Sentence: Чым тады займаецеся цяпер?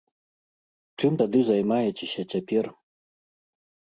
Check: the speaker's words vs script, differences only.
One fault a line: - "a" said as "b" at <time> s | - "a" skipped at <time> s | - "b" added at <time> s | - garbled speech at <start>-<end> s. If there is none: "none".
none